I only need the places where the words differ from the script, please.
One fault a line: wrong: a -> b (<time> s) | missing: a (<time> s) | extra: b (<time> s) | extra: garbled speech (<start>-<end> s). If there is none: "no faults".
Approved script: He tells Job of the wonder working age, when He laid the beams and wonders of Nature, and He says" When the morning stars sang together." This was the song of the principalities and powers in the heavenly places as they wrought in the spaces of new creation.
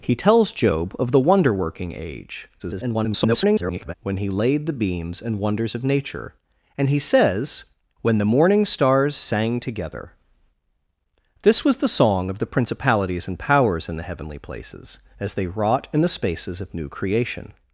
extra: garbled speech (2.6-3.9 s)